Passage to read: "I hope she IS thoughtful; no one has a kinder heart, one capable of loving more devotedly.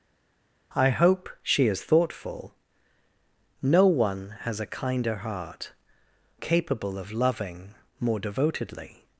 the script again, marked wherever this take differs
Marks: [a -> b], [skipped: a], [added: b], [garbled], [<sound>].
"I hope she IS thoughtful; no one has a kinder heart, [skipped: one] capable of loving more devotedly.